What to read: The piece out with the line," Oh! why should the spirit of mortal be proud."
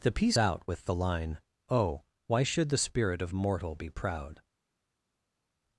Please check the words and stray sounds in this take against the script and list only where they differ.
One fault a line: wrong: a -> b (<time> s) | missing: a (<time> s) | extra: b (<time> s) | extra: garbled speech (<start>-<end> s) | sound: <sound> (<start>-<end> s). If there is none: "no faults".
no faults